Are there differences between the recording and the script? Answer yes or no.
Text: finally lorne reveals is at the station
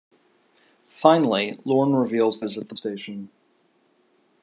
no